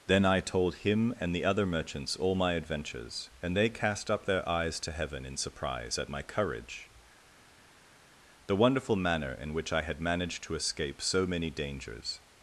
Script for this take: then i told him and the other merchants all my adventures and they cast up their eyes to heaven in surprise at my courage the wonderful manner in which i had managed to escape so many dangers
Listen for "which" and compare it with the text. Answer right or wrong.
right